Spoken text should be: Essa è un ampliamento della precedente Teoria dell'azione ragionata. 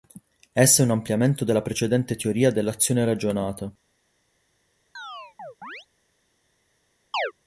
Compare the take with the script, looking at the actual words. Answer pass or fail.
pass